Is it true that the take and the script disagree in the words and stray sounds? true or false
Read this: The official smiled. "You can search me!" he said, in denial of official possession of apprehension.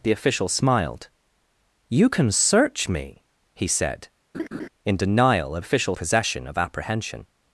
true